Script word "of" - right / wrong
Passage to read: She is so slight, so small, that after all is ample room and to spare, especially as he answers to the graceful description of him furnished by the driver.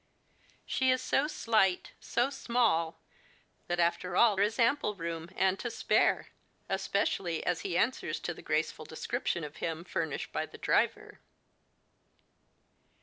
right